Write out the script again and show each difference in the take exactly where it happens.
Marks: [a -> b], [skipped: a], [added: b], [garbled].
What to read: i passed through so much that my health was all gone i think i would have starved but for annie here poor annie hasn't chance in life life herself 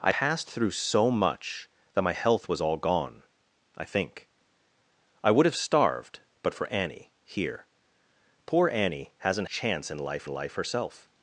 i passed through so much that my health was all gone i think i would have starved but for annie here poor annie hasn't chance in life life herself